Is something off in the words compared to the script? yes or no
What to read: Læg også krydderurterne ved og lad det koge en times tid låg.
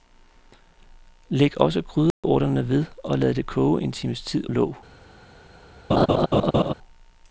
no